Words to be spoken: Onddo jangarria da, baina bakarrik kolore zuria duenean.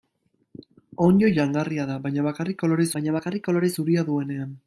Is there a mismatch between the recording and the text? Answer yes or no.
yes